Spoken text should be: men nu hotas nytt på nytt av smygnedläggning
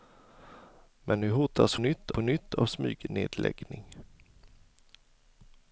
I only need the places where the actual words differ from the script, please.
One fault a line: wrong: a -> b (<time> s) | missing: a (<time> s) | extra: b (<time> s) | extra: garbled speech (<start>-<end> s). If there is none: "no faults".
no faults